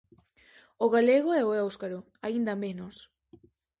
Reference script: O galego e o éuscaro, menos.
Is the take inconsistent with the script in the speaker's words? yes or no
yes